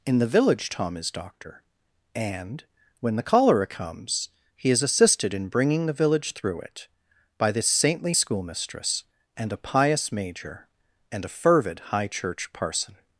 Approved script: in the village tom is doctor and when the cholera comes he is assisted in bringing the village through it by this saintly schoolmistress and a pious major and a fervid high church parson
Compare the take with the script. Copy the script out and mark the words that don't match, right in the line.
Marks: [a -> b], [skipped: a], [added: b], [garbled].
in the village tom is doctor and when the cholera comes he is assisted in bringing the village through it by this saintly schoolmistress and a pious major and a fervid high church parson